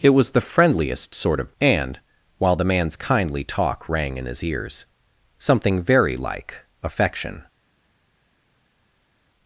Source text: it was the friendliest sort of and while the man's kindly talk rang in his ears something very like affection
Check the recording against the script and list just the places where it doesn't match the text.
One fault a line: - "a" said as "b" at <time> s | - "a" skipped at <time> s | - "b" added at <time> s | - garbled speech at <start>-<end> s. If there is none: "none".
none